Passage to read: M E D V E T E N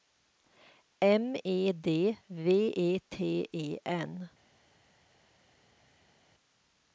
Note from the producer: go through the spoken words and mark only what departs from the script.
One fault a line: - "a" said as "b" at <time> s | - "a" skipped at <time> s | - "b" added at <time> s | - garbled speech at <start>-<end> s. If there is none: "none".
none